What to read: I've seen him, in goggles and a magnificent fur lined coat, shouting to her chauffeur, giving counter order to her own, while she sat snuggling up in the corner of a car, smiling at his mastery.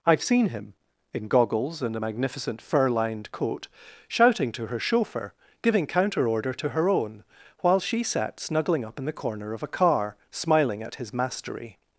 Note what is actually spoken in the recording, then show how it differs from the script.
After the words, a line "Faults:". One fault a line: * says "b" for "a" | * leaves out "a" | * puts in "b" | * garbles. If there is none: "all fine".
I've seen him, in goggles and a magnificent fur lined coat, shouting to her chauffeur, giving counter order to her own, while she sat snuggling up in the corner of a car, smiling at his mastery.
Faults:
all fine